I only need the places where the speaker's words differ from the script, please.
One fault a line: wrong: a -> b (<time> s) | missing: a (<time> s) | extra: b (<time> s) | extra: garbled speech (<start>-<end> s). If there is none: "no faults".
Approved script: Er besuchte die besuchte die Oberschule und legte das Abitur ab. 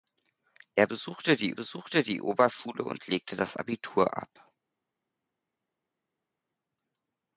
no faults